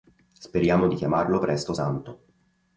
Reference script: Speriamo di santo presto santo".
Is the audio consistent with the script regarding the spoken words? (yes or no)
no